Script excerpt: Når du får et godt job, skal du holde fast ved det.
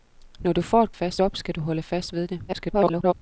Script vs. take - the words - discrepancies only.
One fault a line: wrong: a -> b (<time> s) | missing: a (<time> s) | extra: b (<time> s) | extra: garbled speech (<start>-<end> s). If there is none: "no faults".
wrong: godt -> fast (0.9 s)
extra: garbled speech (2.5-3.1 s)